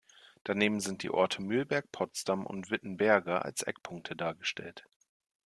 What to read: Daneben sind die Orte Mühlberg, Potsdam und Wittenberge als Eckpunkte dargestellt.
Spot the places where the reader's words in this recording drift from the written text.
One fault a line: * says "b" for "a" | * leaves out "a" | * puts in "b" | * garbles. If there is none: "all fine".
all fine